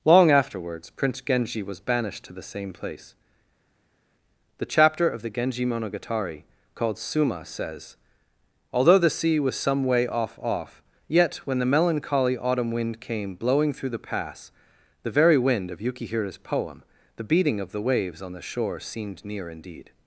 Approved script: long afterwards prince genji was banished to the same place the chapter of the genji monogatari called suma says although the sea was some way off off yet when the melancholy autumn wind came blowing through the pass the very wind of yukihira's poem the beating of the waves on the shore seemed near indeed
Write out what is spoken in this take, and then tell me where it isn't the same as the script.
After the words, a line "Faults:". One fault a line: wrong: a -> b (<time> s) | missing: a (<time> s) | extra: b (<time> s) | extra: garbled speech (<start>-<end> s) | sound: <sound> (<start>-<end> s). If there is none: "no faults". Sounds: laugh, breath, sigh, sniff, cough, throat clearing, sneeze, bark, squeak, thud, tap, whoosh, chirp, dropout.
long afterwards prince genji was banished to the same place the chapter of the genji monogatari called suma says although the sea was some way off off yet when the melancholy autumn wind came blowing through the pass the very wind of yukihira's poem the beating of the waves on the shore seemed near indeed
Faults:
no faults